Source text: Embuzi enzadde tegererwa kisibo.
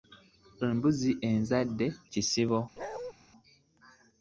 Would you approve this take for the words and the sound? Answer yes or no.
no